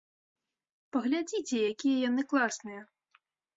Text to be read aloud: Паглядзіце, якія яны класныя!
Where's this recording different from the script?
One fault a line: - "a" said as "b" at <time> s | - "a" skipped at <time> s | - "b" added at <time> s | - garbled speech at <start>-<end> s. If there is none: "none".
none